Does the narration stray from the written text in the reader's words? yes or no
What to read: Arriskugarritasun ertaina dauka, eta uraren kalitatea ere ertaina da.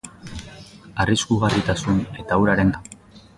yes